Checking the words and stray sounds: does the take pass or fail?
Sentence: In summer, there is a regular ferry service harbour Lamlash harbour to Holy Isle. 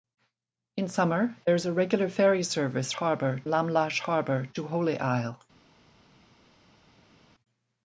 pass